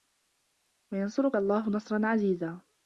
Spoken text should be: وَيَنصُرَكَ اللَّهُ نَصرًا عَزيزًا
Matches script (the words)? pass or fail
pass